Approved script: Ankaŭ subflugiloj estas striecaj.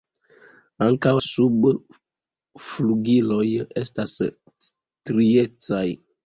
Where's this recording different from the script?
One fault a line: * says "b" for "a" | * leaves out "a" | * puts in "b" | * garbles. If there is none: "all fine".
all fine